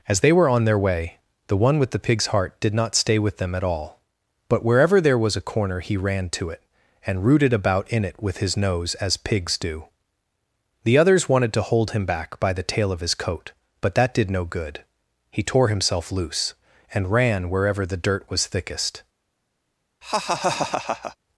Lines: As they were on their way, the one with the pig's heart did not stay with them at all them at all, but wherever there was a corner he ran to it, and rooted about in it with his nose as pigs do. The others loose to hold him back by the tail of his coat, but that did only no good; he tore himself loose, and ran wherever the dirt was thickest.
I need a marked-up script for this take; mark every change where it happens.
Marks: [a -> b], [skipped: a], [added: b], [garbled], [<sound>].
As they were on their way, the one with the pig's heart did not stay with them at all [skipped: them at all,] but wherever there was a corner he ran to it, and rooted about in it with his nose as pigs do. The others [loose -> wanted] to hold him back by the tail of his coat, but that did [skipped: only] no good; he tore himself loose, and ran wherever the dirt was thickest. [laugh]